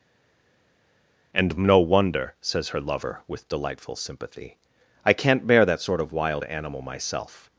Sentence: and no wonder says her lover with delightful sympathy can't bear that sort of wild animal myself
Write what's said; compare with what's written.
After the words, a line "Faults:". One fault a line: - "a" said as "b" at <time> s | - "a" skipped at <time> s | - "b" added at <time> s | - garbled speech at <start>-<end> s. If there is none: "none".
and no wonder says her lover with delightful sympathy i can't bear that sort of wild animal myself
Faults:
- "i" added at 5.0 s